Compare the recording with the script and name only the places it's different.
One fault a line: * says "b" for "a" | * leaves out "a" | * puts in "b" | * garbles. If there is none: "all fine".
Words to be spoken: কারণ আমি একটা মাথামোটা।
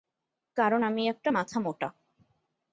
all fine